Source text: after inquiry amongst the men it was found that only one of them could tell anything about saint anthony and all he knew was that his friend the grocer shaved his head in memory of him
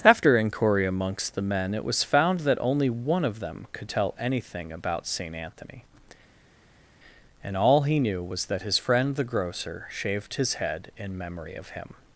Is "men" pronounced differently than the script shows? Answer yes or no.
no